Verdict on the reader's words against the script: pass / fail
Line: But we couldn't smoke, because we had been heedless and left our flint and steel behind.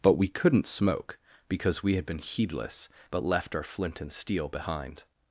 fail